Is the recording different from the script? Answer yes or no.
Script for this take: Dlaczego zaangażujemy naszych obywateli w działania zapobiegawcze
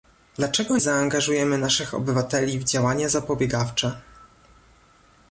no